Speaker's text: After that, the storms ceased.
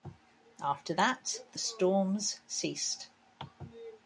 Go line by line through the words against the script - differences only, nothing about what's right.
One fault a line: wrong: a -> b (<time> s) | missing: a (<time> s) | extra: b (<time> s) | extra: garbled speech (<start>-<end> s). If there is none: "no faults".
no faults